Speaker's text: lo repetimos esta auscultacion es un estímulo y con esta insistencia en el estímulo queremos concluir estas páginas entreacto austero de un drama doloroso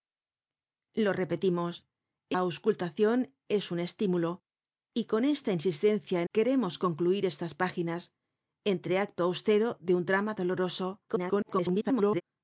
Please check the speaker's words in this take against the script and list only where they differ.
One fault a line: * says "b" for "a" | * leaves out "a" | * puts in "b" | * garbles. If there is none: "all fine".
* leaves out "esta"
* leaves out "el estímulo"
* garbles